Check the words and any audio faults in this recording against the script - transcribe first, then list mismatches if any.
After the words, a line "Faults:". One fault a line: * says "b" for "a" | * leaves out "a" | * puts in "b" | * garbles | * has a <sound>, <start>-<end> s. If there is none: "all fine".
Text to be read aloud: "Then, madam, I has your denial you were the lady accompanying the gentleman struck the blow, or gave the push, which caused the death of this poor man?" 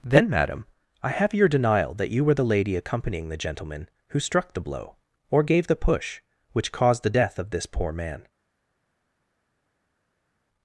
"Then, madam, I have your denial that you were the lady accompanying the gentleman who struck the blow, or gave the push, which caused the death of this poor man?"
Faults:
* says "have" for "has"
* puts in "that"
* puts in "who"